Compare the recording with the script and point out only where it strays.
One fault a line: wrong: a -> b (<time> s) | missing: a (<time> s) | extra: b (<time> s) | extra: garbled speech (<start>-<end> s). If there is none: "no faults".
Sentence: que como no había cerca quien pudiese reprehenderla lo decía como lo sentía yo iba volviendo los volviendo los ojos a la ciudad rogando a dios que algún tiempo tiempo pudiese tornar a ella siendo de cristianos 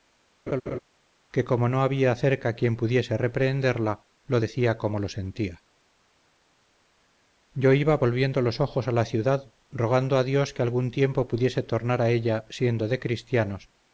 missing: volviendo los (8.6 s)
missing: tiempo (11.3 s)